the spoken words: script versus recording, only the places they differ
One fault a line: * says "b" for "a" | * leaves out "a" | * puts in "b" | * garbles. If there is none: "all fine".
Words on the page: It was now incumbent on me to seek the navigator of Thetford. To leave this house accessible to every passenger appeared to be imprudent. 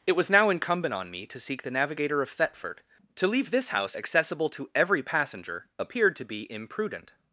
all fine